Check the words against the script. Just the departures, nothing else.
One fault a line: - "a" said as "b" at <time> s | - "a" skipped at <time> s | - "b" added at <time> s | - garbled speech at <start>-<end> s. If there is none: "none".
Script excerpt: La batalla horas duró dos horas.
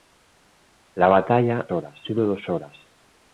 none